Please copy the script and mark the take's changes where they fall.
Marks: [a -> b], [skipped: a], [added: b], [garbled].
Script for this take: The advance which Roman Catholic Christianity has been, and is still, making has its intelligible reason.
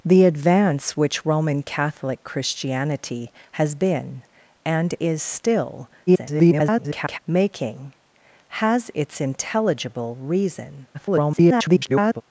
The advance which Roman Catholic Christianity has been, and is still, [garbled] making has its intelligible reason. [garbled]